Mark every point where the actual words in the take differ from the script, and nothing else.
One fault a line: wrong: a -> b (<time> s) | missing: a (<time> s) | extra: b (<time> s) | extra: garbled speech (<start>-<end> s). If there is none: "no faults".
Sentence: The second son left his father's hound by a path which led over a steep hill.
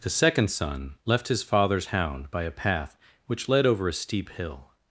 no faults